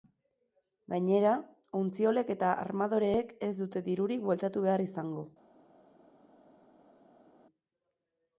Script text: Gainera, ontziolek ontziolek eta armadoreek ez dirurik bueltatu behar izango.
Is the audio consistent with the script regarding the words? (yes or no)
no